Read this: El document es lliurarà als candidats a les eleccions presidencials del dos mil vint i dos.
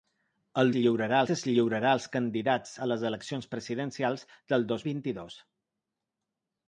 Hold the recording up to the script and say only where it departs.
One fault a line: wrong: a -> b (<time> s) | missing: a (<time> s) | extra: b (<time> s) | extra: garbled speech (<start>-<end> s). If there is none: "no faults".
wrong: document -> lliurarà (0.8 s)
missing: mil (4.8 s)